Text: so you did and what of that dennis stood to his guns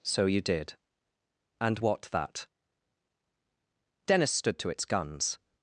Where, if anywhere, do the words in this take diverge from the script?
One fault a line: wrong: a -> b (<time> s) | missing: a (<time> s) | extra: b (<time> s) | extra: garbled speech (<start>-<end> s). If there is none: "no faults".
missing: of (2.0 s)
wrong: his -> its (4.7 s)